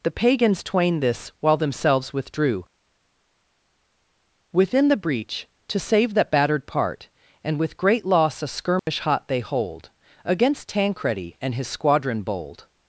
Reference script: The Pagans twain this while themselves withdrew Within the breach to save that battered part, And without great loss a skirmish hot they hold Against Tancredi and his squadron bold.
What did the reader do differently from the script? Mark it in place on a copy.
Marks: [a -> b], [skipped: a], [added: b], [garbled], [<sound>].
The Pagans twain this while themselves withdrew Within the breach to save that battered part, And [without -> with] great loss a skirmish [dropout] hot they hold Against Tancredi and his squadron bold.